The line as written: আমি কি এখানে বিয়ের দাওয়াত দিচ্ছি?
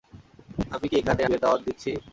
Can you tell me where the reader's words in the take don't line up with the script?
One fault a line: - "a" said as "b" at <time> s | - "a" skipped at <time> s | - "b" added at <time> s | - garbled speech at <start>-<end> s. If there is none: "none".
none